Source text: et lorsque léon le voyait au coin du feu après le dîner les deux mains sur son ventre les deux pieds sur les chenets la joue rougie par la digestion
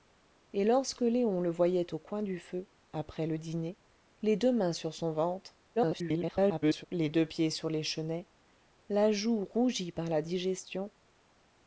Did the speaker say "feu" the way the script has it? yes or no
yes